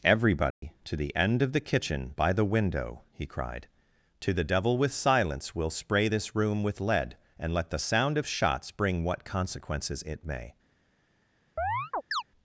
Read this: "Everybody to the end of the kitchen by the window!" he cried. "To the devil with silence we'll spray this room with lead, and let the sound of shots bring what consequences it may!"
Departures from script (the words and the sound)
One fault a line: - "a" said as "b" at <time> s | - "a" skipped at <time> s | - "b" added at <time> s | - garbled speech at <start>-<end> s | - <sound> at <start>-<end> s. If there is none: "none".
- dropout at 0.5-0.6 s
- chirp at 11.6-12.2 s